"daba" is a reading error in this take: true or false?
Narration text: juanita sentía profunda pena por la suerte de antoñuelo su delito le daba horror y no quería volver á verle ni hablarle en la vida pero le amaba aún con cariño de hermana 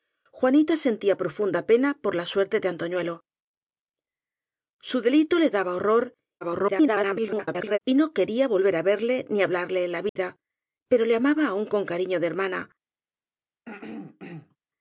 false